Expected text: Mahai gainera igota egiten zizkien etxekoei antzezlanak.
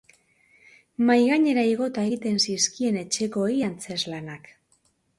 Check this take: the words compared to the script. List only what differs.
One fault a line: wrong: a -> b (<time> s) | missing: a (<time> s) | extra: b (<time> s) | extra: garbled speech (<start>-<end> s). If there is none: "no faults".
no faults